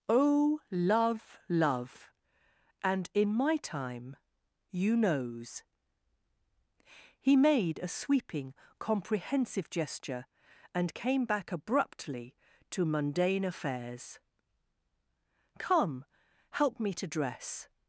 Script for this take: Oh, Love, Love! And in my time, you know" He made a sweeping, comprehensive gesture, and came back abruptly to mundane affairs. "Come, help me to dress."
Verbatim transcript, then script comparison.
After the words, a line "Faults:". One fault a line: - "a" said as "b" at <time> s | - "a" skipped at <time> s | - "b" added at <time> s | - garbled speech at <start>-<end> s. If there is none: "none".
Oh, Love, Love! And in my time, you knows" He made a sweeping, comprehensive gesture, and came back abruptly to mundane affairs. "Come, help me to dress."
Faults:
- "know" said as "knows" at 5.0 s